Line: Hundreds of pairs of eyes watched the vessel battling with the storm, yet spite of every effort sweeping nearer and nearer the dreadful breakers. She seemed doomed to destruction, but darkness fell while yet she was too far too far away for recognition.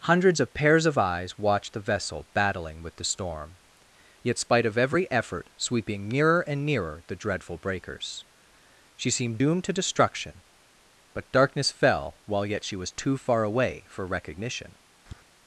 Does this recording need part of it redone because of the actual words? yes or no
yes